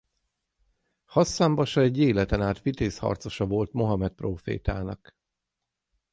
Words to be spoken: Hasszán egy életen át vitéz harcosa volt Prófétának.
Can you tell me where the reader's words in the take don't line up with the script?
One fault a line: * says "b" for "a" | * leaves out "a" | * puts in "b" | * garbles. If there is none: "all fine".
* puts in "basa"
* puts in "Mohamed"